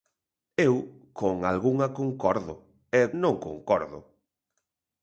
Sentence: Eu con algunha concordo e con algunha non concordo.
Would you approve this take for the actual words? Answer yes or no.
no